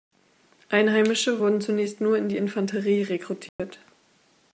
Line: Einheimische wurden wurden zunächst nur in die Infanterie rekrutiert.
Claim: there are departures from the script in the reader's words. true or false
true